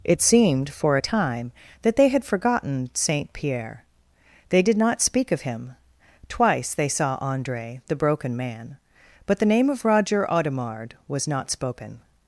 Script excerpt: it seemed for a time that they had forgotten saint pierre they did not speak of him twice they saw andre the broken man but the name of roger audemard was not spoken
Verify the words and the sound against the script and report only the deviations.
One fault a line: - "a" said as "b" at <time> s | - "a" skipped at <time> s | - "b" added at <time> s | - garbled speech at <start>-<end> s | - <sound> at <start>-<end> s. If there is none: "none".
none